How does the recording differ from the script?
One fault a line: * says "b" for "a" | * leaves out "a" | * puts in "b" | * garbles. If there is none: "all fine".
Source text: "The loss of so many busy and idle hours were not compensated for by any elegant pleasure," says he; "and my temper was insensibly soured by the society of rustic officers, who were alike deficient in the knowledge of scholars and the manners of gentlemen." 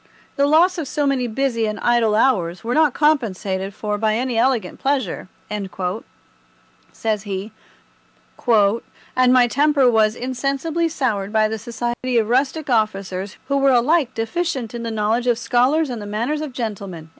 all fine